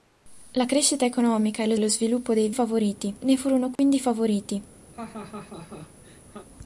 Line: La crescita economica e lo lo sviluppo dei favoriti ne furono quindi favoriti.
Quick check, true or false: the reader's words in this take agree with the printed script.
true